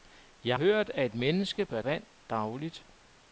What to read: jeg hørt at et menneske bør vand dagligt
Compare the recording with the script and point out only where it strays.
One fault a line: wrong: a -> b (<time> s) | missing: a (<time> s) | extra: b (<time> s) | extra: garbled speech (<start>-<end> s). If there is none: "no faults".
no faults